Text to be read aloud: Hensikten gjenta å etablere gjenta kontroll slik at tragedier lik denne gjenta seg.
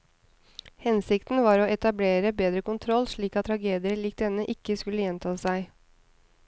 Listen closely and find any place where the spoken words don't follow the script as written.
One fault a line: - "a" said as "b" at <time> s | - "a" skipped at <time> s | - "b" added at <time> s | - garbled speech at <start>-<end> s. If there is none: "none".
- "gjenta" said as "var" at 1.5 s
- "gjenta" said as "bedre" at 2.4 s
- "ikke skulle" added at 4.6 s